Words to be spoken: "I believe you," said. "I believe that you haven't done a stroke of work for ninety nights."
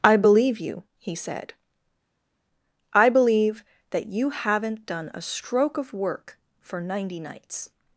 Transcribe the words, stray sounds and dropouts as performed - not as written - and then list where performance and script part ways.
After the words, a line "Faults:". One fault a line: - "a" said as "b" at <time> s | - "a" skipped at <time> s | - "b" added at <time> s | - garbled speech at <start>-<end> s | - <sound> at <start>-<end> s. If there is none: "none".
"I believe you," he said. "I believe that you haven't done a stroke of work for ninety nights."
Faults:
- "he" added at 1.0 s